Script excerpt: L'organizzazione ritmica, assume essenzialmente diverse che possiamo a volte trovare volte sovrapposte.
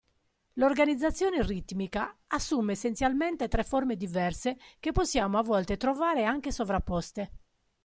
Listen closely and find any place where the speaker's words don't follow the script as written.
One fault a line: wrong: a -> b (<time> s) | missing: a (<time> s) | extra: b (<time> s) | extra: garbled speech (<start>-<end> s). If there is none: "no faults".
extra: tre forme (3.5 s)
wrong: volte -> anche (6.2 s)